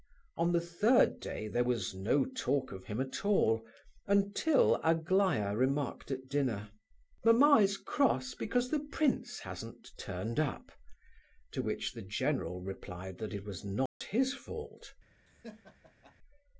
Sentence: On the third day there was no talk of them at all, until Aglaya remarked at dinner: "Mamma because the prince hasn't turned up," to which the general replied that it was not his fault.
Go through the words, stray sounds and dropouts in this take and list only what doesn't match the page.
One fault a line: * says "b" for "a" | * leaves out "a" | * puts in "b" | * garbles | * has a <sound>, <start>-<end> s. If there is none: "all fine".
* says "him" for "them"
* puts in "is cross"
* has a dropout, 13.9-14.0 s
* has a laugh, 15.3-16.1 s